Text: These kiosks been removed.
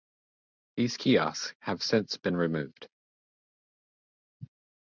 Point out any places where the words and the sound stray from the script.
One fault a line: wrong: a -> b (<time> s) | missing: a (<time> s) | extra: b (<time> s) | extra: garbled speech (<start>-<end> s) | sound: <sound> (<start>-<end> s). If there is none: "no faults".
extra: have since (1.6 s)